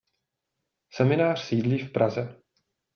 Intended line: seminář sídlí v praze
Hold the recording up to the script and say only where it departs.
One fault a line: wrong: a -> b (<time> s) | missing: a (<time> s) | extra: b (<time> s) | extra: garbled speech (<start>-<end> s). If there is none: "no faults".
no faults